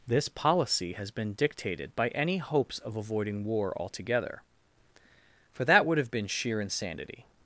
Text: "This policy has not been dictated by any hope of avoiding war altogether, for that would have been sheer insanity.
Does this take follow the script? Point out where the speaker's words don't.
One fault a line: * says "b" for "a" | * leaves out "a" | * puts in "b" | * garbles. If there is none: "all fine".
* leaves out "not"
* says "hopes" for "hope"